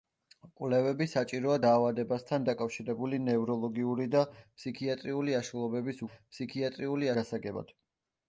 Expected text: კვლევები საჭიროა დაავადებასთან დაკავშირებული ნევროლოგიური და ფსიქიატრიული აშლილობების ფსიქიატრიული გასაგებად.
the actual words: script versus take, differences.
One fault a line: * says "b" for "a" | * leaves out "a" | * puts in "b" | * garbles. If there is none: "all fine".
all fine